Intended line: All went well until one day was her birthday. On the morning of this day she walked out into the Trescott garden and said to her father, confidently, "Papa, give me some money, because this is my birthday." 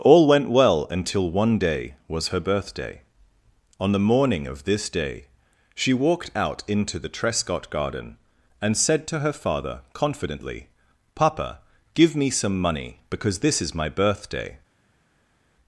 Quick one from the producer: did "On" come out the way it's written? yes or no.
yes